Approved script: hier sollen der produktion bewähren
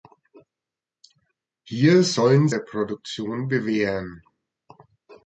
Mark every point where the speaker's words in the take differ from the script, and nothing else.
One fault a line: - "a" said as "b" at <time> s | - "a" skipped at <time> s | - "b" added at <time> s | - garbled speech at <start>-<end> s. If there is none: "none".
none